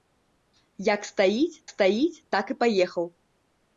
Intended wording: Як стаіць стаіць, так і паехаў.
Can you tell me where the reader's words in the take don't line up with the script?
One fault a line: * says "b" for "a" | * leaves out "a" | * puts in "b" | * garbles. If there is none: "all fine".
all fine